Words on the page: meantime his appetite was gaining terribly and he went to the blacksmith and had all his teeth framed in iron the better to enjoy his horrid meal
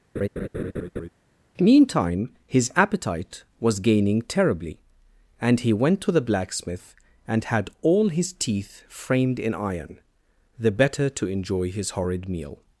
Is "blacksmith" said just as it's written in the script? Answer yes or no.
yes